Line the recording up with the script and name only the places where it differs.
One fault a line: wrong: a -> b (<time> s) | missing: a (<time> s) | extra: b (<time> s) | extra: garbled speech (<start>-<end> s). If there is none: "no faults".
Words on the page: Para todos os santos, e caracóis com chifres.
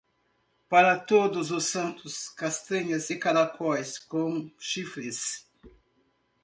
extra: castanhas (2.3 s)